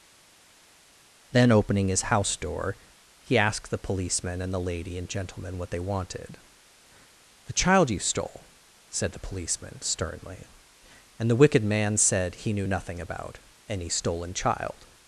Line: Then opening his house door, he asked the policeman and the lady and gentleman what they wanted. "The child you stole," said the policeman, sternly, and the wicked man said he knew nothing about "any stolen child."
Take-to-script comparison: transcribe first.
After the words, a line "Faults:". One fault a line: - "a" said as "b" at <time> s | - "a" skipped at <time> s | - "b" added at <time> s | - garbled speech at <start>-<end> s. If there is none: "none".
Then opening his house door, he asked the policeman and the lady and gentleman what they wanted. "The child you stole," said the policeman, sternly, and the wicked man said he knew nothing about "any stolen child."
Faults:
none